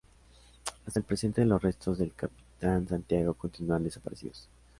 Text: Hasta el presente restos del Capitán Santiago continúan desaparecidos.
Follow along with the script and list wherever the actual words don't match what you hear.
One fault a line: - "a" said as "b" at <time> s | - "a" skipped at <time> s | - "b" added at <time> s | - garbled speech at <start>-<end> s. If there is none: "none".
- "los" added at 1.4 s